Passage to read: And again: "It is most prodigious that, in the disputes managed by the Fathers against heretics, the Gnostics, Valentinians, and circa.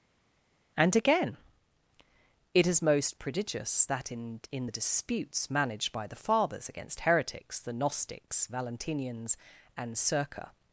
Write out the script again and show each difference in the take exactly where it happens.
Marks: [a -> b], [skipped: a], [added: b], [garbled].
And again: "It is most prodigious that, in [added: in] the disputes managed by the Fathers against heretics, the Gnostics, Valentinians, and circa.